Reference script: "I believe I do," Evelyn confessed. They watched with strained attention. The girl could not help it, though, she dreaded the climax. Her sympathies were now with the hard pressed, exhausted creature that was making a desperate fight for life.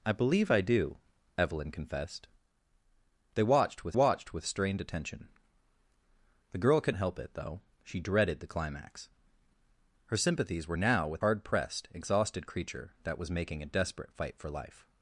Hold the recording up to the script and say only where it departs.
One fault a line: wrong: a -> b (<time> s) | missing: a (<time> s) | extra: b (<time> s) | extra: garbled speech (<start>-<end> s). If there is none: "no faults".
extra: watched with (3.9 s)
missing: not (7.0 s)
missing: the (11.2 s)